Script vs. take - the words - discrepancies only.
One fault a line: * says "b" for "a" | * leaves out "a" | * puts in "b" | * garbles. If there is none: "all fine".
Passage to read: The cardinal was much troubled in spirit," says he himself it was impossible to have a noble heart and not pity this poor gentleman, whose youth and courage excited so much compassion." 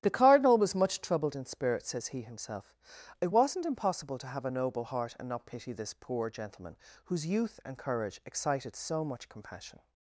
* says "wasn't" for "was"